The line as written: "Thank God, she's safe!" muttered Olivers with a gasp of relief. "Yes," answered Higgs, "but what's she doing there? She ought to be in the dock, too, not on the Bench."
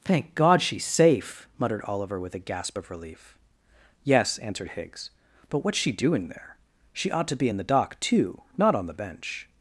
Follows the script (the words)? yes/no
no